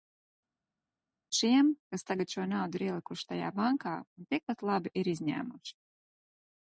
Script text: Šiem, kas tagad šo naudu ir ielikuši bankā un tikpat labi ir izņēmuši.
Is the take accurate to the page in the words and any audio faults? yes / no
no